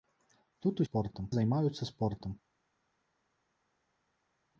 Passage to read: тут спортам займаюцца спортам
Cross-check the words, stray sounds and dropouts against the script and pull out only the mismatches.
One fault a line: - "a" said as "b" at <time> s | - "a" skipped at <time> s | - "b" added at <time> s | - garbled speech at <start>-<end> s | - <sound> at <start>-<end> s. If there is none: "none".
none